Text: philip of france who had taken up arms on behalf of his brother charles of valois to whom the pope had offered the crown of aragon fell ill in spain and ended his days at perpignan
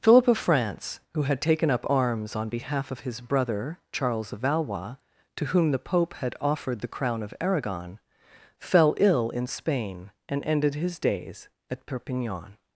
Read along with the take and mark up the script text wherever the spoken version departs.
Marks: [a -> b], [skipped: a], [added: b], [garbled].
philip of france who had taken up arms on behalf of his brother charles of valois to whom the pope had offered the crown of aragon fell ill in spain and ended his days at perpignan